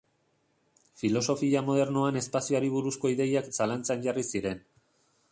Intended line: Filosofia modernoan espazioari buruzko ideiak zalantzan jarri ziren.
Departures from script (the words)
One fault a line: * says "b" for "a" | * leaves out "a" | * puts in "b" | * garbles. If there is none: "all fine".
all fine